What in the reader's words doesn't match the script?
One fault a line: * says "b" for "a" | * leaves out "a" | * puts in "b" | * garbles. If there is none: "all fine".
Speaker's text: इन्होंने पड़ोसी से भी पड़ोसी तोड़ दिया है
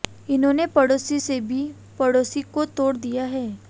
* puts in "को"